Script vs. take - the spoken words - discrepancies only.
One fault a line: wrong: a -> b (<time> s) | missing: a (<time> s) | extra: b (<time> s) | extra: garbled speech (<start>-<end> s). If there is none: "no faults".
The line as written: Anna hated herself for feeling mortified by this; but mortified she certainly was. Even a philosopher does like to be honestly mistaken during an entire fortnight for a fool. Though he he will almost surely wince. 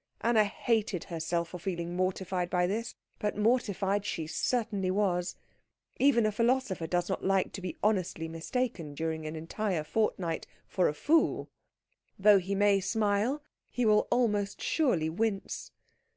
extra: not (7.1 s)
extra: may smile (12.5 s)